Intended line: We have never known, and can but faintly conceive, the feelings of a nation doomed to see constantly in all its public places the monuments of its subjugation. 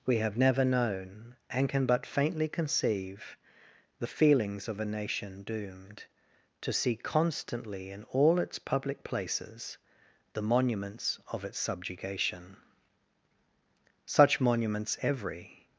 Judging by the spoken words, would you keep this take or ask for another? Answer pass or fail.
fail